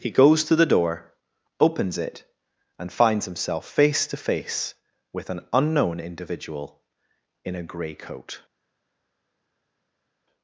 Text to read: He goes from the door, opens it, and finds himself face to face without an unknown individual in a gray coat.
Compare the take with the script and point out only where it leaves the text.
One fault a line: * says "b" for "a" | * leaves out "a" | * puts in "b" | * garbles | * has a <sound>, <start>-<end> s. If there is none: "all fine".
* says "to" for "from"
* says "with" for "without"